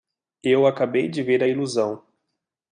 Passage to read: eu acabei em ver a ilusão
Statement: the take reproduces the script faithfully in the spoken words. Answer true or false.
false